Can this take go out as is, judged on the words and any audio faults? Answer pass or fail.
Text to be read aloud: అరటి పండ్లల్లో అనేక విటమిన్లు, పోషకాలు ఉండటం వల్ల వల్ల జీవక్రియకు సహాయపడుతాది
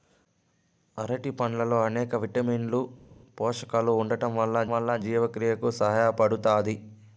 pass